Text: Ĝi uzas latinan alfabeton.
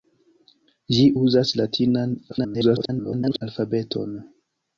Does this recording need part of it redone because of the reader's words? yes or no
yes